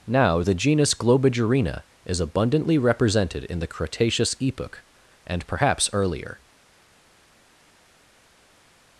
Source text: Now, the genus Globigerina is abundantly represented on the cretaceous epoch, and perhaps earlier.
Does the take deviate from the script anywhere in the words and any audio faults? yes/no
yes